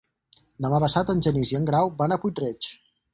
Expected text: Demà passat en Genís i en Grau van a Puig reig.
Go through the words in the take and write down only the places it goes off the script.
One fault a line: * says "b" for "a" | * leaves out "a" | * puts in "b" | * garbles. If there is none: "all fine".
all fine